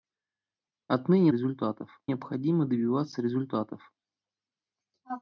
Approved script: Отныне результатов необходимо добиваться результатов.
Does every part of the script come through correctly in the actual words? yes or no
yes